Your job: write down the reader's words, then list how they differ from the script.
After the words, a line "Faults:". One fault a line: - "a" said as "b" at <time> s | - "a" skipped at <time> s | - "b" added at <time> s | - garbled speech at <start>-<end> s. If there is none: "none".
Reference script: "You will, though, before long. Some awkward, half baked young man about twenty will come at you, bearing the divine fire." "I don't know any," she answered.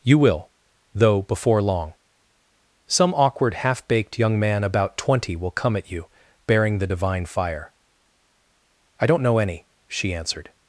"You will, though, before long. Some awkward, half baked young man about twenty will come at you, bearing the divine fire." "I don't know any," she answered.
Faults:
none